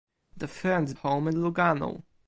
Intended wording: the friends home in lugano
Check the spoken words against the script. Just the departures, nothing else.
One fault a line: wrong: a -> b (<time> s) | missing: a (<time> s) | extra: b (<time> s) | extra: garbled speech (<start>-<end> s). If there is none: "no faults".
no faults